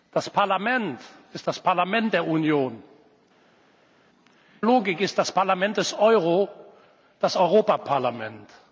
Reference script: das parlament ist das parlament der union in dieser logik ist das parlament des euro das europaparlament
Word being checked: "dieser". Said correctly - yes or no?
no